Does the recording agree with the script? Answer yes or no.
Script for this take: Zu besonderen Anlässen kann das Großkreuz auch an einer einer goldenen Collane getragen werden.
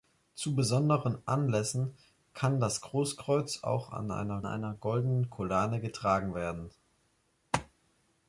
yes